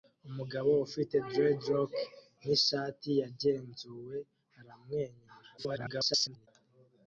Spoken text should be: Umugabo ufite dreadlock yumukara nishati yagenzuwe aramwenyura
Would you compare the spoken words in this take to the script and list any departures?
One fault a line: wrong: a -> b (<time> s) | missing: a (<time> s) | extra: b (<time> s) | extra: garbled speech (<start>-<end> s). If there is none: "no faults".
missing: yumukara (1.9 s)
extra: garbled speech (5.6-6.5 s)